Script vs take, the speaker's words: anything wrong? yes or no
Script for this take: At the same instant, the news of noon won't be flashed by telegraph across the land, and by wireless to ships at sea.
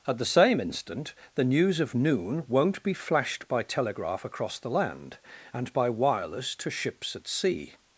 no